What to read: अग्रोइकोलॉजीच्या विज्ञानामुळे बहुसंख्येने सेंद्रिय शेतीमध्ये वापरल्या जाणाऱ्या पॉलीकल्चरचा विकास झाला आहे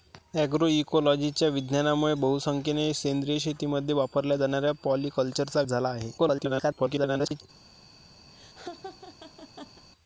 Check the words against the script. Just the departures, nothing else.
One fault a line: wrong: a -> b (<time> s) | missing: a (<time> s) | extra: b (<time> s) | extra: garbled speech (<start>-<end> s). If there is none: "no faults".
missing: विकास (5.6 s)
extra: garbled speech (6.2-7.4 s)